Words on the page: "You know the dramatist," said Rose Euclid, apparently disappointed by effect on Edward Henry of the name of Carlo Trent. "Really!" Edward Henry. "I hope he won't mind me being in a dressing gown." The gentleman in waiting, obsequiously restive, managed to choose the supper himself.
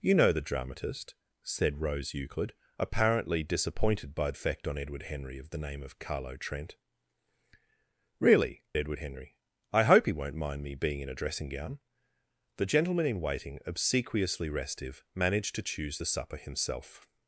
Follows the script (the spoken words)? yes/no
yes